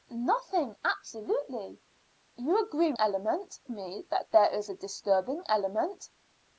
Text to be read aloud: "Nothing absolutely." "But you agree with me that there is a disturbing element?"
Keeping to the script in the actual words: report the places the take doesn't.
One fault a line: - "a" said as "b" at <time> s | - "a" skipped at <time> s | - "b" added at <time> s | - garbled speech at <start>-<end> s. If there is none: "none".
- "But" skipped at 1.8 s
- "with" said as "element" at 3.0 s